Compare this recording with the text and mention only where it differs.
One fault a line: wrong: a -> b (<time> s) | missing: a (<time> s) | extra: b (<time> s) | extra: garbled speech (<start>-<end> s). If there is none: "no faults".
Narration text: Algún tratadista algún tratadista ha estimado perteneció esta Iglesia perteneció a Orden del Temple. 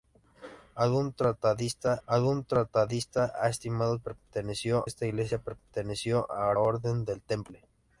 no faults